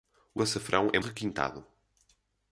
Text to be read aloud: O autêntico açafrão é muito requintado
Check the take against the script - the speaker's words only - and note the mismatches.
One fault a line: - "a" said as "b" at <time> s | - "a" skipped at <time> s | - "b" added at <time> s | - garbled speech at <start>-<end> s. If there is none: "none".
- "autêntico" skipped at 0.4 s
- "muito" skipped at 1.0 s